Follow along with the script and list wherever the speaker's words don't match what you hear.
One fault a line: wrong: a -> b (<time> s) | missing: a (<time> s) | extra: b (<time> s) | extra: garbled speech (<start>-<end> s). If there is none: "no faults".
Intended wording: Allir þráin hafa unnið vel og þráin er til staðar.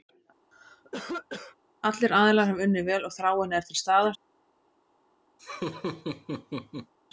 wrong: þráin -> aðilar (2.2 s)